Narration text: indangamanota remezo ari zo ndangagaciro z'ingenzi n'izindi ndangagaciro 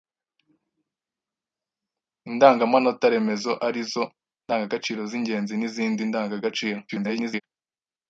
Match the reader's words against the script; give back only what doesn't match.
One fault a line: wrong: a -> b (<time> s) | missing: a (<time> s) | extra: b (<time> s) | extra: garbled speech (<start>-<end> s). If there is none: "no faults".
extra: garbled speech (6.9-7.4 s)